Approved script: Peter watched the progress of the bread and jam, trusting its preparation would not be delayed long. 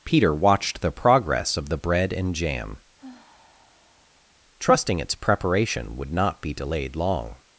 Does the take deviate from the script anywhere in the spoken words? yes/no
no